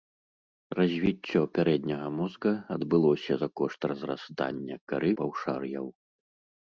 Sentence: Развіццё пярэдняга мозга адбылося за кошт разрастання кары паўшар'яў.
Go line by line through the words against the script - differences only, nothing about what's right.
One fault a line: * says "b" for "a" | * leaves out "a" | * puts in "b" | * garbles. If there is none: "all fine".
all fine